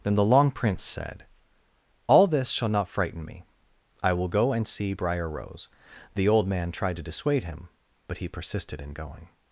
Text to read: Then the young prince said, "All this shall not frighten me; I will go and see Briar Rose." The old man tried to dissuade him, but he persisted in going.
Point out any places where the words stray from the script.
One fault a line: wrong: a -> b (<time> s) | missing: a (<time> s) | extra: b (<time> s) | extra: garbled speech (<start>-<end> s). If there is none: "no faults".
wrong: young -> long (0.2 s)